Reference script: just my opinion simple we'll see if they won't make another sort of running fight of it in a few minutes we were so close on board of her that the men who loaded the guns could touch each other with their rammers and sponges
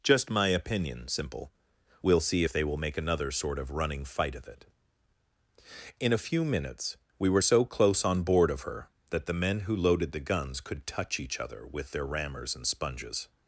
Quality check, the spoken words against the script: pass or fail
fail